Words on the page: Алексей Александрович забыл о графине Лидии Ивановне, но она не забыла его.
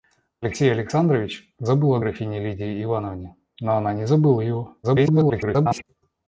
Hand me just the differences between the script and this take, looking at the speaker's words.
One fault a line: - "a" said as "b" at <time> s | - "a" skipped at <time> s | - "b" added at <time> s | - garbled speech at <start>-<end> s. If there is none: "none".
- garbled speech at 4.8-5.8 s